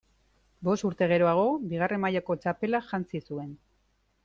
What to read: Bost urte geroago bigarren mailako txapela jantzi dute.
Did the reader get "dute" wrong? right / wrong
wrong